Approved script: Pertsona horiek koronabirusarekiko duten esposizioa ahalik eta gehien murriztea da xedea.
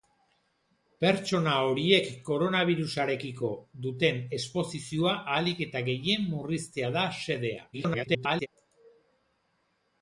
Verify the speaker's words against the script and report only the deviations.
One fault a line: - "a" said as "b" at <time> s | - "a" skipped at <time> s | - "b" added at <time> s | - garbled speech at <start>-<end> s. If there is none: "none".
- garbled speech at 7.7-8.5 s